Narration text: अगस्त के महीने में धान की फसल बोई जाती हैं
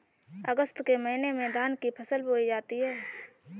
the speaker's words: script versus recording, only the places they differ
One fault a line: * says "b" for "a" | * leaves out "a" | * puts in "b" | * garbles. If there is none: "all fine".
all fine